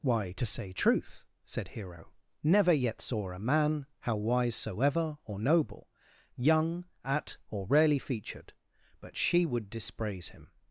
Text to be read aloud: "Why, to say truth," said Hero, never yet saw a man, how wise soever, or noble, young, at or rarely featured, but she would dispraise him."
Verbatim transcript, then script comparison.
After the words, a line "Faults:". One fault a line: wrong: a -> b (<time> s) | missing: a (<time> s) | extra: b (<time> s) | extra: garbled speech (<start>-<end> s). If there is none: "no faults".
"Why, to say truth," said Hero, never yet saw a man, how wise soever, or noble, young, at or rarely featured, but she would dispraise him."
Faults:
no faults